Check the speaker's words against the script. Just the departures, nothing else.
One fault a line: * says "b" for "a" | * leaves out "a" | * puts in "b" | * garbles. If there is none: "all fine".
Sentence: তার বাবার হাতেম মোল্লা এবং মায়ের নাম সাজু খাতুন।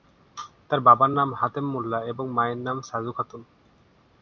* puts in "নাম"